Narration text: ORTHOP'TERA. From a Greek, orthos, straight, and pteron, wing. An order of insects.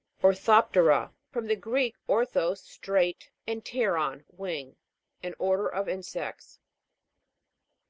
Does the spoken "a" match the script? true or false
false